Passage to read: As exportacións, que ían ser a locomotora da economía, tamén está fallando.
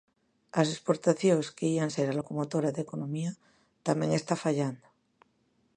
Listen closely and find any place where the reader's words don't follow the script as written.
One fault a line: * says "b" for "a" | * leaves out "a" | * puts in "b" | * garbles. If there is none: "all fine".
all fine